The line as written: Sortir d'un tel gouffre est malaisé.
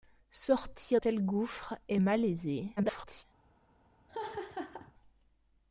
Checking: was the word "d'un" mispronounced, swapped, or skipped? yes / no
yes